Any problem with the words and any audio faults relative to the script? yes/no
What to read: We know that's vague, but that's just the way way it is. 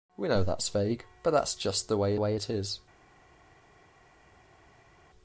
no